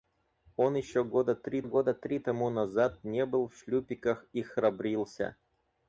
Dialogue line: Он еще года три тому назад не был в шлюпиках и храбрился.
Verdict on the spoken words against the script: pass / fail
fail